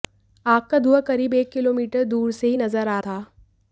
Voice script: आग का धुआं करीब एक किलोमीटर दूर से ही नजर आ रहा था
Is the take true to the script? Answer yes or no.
no